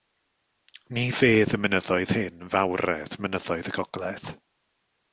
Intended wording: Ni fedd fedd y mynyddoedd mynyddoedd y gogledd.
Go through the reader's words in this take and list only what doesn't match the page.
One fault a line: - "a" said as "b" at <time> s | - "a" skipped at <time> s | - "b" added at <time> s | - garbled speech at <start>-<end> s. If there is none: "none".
- "fedd" skipped at 1.5 s
- "hyn fawredd" added at 2.2 s